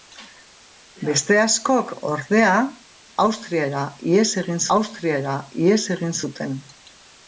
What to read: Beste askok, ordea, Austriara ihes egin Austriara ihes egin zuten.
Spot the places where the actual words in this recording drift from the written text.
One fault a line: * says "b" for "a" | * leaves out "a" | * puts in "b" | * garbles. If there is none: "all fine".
all fine